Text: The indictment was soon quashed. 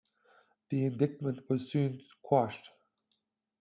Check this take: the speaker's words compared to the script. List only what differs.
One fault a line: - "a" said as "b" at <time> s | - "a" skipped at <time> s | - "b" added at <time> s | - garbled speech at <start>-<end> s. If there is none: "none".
none